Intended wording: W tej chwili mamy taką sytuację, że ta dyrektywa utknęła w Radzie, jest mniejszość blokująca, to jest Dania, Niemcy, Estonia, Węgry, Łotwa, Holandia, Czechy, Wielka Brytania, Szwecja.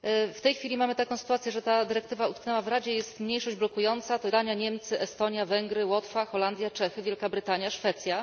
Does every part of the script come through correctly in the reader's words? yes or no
no